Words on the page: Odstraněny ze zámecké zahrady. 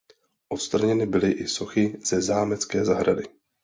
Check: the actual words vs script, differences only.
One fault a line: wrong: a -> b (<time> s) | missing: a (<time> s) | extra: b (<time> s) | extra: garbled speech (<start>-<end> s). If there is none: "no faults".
extra: byly i sochy (1.1 s)